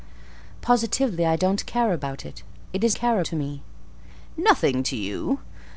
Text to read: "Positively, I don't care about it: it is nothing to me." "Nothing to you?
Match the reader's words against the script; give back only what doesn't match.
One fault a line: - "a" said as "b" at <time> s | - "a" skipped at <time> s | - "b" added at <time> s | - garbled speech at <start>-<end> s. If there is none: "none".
- "nothing" said as "care" at 2.9 s